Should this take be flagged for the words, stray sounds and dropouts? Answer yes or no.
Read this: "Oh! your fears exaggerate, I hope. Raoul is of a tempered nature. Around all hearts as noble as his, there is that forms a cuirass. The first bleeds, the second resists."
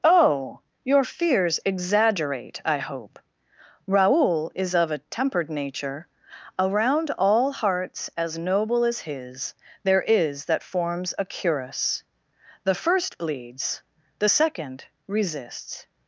no